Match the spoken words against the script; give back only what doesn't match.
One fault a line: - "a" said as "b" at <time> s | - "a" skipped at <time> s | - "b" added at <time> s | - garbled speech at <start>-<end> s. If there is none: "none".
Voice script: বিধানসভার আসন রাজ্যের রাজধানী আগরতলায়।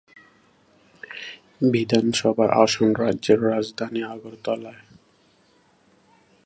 none